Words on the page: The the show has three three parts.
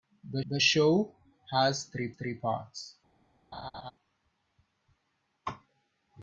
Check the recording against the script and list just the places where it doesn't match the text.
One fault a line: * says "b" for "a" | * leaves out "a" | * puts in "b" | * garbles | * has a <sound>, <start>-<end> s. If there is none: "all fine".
* has a laugh, 3.5-3.9 s